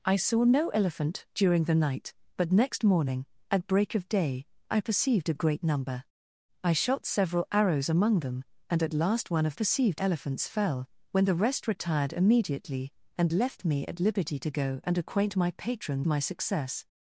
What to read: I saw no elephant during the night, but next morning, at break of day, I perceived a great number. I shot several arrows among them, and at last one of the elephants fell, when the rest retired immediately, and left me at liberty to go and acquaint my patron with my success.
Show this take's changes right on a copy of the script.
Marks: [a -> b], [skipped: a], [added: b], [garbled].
I saw no elephant during the night, but next morning, at break of day, I perceived a great number. I shot several arrows among them, and at last one of [the -> perceived] elephants fell, when the rest retired immediately, and left me at liberty to go and acquaint my patron [skipped: with] my success.